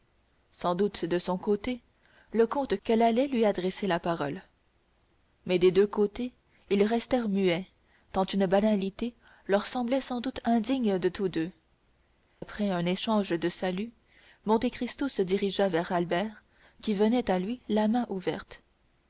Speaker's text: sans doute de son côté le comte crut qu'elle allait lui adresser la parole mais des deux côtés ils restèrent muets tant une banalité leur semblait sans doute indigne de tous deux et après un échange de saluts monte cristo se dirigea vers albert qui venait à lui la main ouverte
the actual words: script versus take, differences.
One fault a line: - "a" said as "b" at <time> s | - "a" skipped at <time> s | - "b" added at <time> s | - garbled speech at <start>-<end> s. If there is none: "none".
- "crut" skipped at 2.8 s
- "et" skipped at 11.5 s